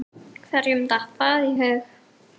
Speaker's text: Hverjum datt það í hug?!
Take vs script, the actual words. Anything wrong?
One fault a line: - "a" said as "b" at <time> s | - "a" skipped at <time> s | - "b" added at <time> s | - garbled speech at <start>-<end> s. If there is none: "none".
none